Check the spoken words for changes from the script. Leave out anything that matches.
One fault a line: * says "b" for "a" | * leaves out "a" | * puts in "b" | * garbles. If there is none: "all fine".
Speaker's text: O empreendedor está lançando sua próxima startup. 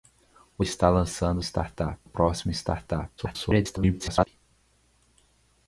* leaves out "empreendedor"
* says "startup" for "sua"
* garbles